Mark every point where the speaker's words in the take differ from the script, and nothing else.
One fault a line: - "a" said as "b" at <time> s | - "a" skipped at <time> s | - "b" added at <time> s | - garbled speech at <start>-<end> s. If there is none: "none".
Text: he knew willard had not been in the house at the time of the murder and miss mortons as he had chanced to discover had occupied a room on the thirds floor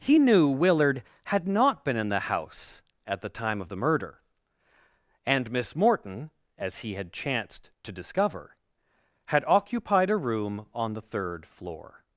- "mortons" said as "morton" at 5.7 s
- "thirds" said as "third" at 11.0 s